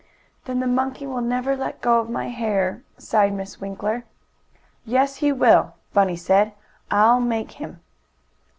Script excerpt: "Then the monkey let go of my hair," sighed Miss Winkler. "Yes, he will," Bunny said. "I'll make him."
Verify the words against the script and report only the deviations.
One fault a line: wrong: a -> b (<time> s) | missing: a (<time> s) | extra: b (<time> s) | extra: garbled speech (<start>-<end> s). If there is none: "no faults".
extra: will never (1.1 s)